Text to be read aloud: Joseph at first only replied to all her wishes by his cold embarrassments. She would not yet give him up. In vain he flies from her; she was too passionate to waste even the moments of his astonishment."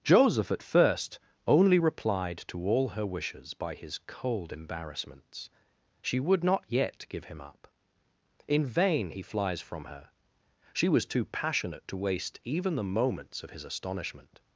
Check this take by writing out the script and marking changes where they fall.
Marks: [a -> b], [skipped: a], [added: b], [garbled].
Joseph at first only replied to all her wishes by his cold embarrassments. She would not yet give him up. In vain he flies from her; she was too passionate to waste even the moments of his astonishment."